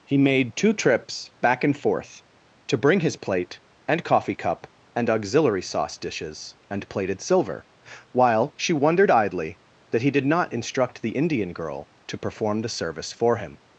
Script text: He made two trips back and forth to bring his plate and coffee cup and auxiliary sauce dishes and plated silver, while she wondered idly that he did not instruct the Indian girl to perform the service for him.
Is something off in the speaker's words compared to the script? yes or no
no